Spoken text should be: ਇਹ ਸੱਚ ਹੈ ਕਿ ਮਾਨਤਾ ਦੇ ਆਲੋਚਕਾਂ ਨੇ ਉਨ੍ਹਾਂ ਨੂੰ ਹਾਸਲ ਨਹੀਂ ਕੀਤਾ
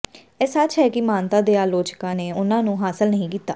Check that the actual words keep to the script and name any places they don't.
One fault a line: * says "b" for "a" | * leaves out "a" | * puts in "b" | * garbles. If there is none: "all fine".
all fine